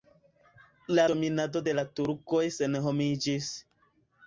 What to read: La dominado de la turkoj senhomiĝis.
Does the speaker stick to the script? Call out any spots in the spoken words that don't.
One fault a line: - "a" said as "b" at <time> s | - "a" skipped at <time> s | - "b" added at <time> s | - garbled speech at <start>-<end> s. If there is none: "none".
none